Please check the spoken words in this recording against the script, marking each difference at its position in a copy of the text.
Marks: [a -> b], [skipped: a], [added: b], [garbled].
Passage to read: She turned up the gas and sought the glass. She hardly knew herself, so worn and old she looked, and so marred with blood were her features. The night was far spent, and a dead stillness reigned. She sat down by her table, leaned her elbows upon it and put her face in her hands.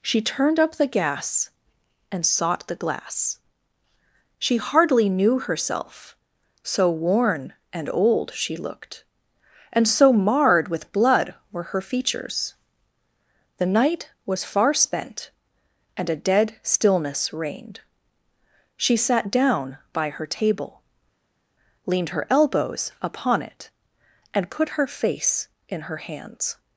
She turned up the gas and sought the glass. She hardly knew herself, so worn and old she looked, and so marred with blood were her features. The night was far spent, and a dead stillness reigned. She sat down by her table, leaned her elbows upon it and put her face in her hands.